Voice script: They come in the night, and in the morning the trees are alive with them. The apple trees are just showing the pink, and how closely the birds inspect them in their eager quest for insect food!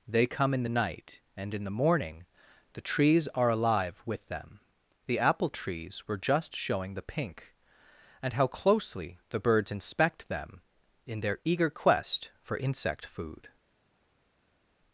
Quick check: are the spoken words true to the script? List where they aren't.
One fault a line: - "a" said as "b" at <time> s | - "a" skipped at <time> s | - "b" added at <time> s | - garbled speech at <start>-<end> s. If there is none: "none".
- "are" said as "were" at 6.1 s